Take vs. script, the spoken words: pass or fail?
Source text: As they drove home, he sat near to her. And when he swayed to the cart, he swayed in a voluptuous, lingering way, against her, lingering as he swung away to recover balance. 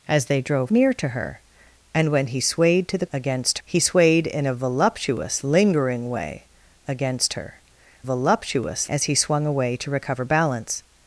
fail